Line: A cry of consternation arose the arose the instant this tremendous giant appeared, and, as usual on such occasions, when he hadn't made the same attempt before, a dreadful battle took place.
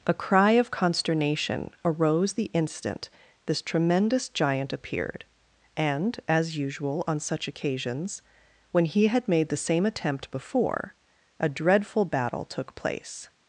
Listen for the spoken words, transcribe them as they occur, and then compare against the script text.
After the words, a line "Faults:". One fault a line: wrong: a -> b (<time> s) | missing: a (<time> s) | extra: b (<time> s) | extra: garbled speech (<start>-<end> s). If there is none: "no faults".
A cry of consternation arose the instant this tremendous giant appeared, and, as usual on such occasions, when he had made the same attempt before, a dreadful battle took place.
Faults:
missing: arose the (2.5 s)
wrong: hadn't -> had (9.1 s)